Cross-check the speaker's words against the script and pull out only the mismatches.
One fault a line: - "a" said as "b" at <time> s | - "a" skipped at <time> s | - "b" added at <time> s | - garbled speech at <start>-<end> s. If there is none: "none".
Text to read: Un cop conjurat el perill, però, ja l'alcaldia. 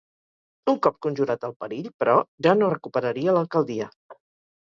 - "no recuperaria" added at 2.6 s